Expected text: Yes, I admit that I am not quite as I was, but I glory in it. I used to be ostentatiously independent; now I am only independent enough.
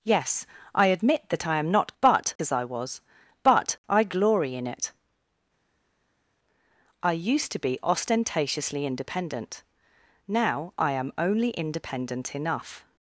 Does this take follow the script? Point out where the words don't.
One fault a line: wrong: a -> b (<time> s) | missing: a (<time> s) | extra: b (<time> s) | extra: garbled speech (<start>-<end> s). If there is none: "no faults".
wrong: quite -> but (2.0 s)